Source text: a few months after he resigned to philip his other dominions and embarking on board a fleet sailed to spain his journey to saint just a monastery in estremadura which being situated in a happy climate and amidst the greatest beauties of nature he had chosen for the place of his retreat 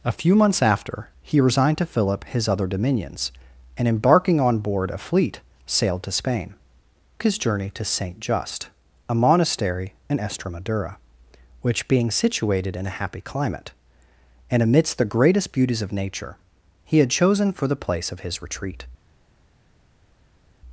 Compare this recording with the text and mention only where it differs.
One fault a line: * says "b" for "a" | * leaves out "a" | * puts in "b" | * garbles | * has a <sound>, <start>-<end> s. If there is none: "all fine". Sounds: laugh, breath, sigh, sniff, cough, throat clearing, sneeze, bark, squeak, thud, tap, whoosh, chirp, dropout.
all fine